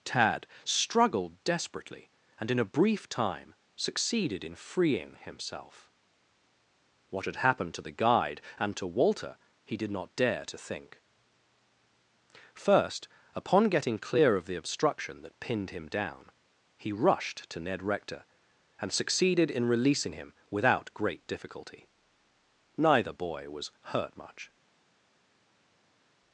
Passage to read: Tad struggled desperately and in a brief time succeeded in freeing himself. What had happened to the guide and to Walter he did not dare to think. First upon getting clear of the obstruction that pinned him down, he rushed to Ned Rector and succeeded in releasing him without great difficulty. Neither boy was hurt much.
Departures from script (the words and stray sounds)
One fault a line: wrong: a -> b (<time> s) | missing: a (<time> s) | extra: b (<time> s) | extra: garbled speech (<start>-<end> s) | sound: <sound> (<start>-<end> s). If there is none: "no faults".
no faults